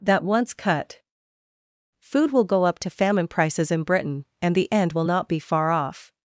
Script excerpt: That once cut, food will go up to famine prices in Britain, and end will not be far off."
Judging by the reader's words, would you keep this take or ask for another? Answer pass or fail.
fail